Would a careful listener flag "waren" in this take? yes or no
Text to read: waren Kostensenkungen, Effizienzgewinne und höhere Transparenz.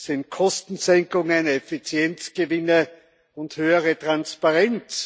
yes